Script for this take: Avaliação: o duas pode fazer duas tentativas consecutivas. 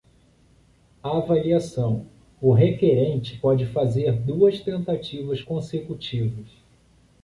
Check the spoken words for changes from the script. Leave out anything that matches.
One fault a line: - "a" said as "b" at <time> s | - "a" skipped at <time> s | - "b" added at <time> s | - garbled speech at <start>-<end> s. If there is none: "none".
- "duas" said as "requerente" at 2.5 s